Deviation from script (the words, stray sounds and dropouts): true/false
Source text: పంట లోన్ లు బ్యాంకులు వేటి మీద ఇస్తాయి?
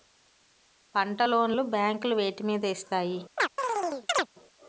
true